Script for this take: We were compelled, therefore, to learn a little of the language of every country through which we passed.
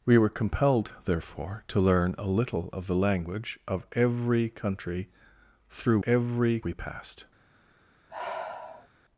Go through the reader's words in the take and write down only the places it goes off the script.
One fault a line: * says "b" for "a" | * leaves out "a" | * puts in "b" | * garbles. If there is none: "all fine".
* says "every" for "which"